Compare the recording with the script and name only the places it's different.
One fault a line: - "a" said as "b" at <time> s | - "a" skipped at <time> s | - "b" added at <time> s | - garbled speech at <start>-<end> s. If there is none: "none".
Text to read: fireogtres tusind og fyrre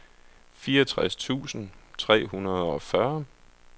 - "tre hundrede" added at 2.0 s